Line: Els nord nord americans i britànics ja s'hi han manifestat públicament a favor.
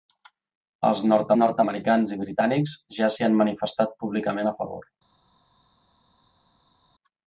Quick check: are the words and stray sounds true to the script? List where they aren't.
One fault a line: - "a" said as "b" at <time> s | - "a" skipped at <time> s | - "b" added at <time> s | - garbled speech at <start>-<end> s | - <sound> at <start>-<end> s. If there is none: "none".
none